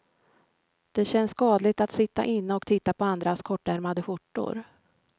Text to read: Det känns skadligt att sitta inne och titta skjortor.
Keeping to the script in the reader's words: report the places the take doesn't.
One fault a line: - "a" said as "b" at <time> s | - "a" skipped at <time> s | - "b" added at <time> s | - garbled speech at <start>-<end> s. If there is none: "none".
- "på andras kortärmade" added at 2.9 s